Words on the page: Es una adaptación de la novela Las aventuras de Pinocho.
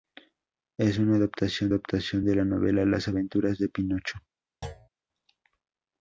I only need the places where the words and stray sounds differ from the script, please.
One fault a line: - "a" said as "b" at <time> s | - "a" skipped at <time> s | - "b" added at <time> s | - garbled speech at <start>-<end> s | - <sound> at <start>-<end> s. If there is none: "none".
- "adaptación" added at 1.7 s
- thud at 4.6-4.9 s